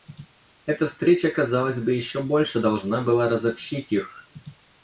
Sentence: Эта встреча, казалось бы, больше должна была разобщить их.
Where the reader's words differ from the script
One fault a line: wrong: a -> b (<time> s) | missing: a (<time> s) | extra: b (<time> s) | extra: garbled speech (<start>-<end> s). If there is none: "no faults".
extra: еще (1.9 s)